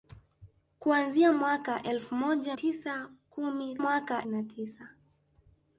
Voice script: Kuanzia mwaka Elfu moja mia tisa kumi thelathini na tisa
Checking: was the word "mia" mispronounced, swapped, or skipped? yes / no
yes